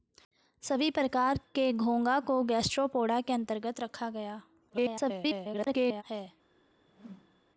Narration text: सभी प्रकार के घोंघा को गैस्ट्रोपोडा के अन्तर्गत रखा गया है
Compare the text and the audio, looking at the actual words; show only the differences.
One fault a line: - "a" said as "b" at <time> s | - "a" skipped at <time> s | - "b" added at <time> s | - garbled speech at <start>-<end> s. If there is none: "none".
- garbled speech at 4.7-6.0 s